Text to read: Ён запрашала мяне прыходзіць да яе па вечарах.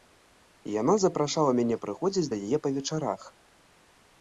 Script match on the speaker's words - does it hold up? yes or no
no